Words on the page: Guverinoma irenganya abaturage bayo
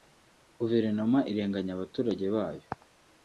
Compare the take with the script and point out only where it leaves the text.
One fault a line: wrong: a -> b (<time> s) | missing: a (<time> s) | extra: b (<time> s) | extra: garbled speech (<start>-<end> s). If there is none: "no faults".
no faults